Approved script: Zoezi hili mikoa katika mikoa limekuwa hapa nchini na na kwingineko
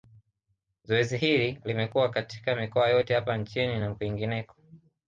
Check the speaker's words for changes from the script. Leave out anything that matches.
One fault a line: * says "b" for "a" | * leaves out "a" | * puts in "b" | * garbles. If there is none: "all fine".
* says "limekuwa" for "mikoa"
* says "yote" for "limekuwa"
* leaves out "na"